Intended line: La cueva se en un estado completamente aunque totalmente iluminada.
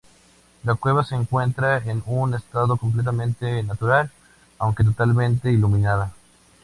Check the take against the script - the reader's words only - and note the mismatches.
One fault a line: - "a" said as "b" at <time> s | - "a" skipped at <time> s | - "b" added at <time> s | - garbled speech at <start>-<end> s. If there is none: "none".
- "encuentra" added at 1.1 s
- "natural" added at 3.6 s